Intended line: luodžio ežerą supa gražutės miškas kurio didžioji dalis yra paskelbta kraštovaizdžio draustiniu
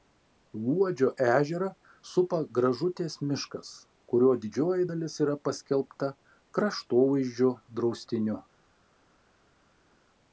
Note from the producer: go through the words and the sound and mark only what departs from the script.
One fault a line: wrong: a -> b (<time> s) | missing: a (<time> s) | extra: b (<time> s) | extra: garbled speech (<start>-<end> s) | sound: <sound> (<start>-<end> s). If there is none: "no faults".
no faults